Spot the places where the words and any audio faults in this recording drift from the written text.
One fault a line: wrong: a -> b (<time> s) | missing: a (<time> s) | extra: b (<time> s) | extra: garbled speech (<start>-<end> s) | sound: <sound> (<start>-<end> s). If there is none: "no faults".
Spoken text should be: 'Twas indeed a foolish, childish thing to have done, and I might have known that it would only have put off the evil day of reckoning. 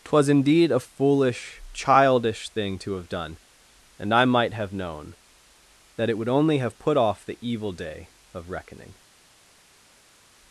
no faults